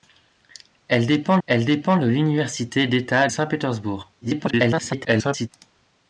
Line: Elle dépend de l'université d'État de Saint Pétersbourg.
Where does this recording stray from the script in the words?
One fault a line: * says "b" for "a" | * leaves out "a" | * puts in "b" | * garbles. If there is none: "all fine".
* puts in "elle dépend"
* leaves out "de"
* garbles